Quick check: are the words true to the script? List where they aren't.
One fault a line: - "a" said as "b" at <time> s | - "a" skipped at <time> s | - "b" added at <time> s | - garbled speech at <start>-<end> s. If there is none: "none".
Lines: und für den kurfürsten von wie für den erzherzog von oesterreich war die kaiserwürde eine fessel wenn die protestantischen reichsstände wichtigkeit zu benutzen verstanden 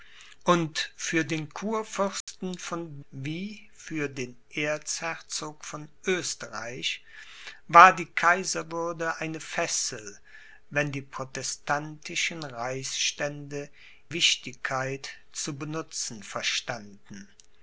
none